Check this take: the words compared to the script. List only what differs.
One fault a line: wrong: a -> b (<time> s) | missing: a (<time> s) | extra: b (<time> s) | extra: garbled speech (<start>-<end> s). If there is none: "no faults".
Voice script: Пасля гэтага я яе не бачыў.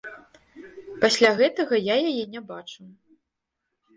no faults